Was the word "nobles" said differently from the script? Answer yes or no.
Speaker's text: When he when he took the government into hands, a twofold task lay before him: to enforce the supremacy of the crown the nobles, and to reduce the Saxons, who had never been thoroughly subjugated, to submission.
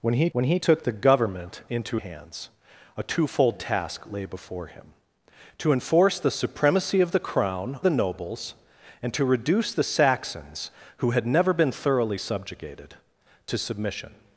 no